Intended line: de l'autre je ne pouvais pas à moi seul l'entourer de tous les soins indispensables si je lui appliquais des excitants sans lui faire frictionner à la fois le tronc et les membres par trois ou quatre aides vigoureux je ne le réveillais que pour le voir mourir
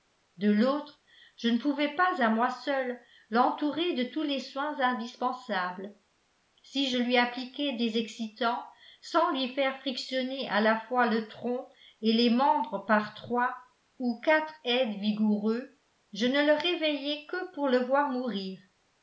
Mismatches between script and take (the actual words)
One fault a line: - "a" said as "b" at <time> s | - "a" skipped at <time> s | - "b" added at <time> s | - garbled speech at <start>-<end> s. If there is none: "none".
none